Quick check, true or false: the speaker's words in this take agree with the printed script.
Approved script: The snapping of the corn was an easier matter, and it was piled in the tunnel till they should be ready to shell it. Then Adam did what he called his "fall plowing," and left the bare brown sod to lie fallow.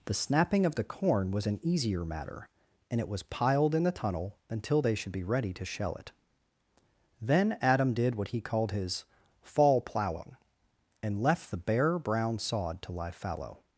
false